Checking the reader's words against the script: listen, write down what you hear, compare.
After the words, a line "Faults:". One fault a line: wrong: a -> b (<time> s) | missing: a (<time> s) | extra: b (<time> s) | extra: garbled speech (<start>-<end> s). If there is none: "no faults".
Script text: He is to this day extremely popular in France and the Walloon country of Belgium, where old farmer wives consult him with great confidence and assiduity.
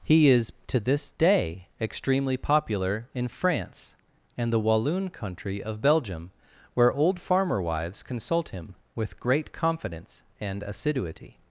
He is to this day extremely popular in France and the Walloon country of Belgium, where old farmer wives consult him with great confidence and assiduity.
Faults:
no faults